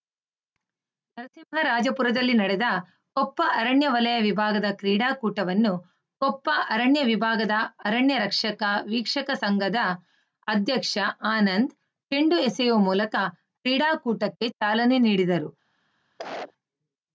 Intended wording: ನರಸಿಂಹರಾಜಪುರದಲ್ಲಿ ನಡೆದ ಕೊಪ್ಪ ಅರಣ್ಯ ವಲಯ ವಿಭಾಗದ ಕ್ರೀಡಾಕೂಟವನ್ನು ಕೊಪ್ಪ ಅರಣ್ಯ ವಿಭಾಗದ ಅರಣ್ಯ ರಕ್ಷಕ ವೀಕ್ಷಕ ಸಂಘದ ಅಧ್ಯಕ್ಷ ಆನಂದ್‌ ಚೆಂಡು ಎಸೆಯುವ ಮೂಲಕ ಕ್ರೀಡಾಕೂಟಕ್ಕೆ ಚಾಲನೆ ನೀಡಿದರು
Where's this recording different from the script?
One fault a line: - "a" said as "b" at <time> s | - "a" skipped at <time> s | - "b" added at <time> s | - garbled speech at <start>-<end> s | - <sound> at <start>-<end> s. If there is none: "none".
- cough at 16.2-16.5 s